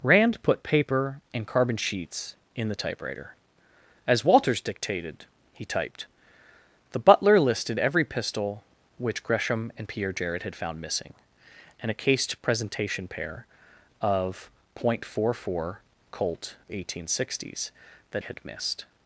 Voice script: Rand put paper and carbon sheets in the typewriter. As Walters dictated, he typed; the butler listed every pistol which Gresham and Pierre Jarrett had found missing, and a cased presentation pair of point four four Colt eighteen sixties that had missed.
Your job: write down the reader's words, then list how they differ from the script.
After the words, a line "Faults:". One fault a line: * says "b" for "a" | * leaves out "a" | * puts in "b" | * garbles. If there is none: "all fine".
Rand put paper and carbon sheets in the typewriter. As Walters dictated, he typed; the butler listed every pistol which Gresham and Pierre Jarrett had found missing, and a cased presentation pair of point four four Colt eighteen sixties that had missed.
Faults:
all fine